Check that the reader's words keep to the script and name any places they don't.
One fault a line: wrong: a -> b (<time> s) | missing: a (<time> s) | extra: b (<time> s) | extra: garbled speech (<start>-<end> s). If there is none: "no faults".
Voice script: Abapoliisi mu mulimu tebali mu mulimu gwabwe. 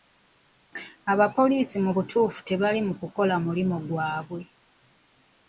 wrong: mulimu -> butuufu (2.0 s)
extra: kukola (3.0 s)